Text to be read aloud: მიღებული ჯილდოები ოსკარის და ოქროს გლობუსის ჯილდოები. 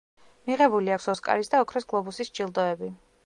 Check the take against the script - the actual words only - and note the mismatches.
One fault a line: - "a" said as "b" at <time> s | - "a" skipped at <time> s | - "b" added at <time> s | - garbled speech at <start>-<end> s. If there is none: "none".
- "ჯილდოები" said as "აქვს" at 0.9 s